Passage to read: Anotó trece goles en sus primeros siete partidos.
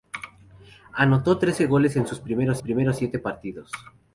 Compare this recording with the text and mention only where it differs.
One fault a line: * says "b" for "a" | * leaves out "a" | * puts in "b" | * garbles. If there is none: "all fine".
* puts in "primeros"